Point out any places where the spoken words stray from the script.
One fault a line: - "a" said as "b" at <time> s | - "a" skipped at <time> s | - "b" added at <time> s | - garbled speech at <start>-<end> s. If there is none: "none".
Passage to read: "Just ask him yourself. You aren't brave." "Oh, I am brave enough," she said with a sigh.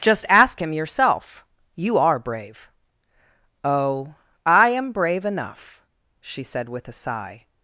- "aren't" said as "are" at 2.0 s